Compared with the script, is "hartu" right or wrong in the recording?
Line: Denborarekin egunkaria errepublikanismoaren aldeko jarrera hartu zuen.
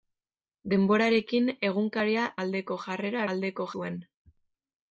wrong